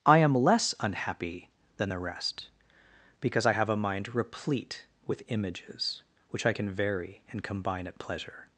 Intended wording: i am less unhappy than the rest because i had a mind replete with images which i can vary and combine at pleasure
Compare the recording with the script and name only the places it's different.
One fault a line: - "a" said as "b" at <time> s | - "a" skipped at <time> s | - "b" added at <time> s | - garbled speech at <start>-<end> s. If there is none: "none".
- "had" said as "have" at 3.5 s